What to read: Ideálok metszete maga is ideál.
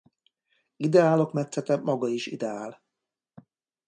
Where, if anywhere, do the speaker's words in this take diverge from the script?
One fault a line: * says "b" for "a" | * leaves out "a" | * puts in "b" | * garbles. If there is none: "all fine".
all fine